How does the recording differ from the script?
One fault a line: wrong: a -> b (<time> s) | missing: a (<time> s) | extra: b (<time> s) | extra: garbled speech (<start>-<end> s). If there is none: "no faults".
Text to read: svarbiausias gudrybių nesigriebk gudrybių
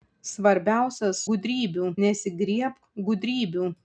no faults